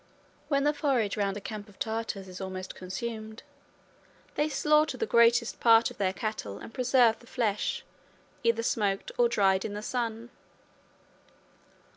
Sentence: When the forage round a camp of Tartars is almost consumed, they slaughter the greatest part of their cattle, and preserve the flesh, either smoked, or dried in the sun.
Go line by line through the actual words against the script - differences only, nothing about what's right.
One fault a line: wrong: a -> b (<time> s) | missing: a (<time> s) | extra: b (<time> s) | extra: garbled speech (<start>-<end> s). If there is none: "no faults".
no faults